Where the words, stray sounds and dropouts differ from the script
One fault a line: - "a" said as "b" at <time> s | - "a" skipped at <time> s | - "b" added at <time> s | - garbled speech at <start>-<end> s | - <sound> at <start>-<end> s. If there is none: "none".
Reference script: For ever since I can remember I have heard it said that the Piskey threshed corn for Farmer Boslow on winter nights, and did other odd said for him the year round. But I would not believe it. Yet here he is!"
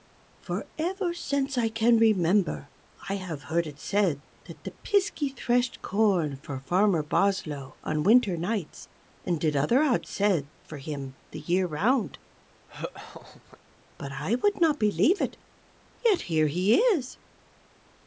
- laugh at 12.7-13.6 s